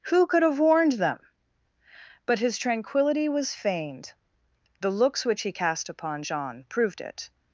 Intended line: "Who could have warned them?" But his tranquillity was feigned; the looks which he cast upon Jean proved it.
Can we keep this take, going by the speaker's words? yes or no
yes